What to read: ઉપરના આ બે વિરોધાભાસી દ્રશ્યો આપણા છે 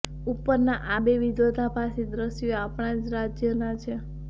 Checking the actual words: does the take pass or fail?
fail